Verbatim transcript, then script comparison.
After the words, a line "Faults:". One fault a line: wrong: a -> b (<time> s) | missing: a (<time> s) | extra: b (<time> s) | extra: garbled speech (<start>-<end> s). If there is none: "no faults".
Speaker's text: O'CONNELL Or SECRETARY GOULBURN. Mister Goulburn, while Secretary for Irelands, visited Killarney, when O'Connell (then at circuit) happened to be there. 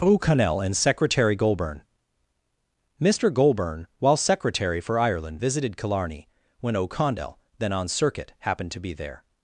O'CONNELL AND SECRETARY GOULBURN. Mister Goulburn, while Secretary for Ireland, visited Killarney, when O'Connell (then on circuit) happened to be there.
Faults:
wrong: Or -> AND (0.6 s)
wrong: Irelands -> Ireland (5.0 s)
wrong: at -> on (7.7 s)